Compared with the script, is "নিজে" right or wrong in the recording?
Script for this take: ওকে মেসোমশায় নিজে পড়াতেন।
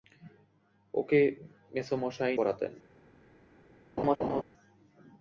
wrong